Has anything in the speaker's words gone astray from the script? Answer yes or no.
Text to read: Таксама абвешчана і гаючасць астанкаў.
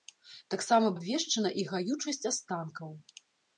no